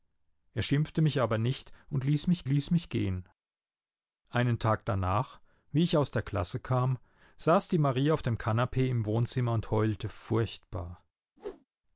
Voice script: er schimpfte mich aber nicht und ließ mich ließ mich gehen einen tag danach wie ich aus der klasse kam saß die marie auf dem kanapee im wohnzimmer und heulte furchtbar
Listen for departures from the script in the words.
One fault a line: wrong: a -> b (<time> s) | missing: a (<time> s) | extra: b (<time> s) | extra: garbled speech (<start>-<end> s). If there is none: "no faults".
no faults